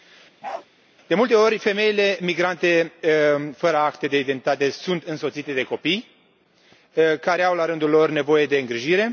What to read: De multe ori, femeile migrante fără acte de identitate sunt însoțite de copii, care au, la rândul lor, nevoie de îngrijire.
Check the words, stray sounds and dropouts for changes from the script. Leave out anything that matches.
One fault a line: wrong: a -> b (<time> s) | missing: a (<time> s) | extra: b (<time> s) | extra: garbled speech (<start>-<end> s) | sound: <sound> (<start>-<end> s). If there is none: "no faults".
sound: bark (0.4-0.7 s)